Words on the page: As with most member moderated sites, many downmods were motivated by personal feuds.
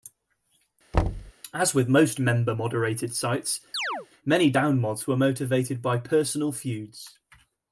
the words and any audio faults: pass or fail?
fail